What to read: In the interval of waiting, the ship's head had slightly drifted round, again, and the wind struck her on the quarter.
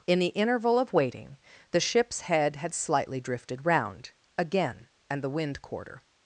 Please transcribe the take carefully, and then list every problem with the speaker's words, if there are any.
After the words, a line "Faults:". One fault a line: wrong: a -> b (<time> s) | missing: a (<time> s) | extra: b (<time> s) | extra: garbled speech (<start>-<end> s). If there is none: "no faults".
In the interval of waiting, the ship's head had slightly drifted round, again, and the wind quarter.
Faults:
missing: struck her on the (5.6 s)